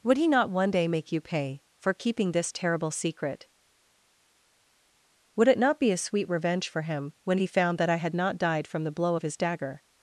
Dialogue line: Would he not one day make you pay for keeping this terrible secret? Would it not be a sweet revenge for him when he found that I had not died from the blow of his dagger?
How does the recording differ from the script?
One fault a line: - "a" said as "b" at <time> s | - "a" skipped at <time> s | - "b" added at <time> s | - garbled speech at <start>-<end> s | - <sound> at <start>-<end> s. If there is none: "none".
none